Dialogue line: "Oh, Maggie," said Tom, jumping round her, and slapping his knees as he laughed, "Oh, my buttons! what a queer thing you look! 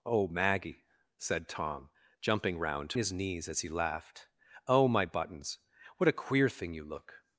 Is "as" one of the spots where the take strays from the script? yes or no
no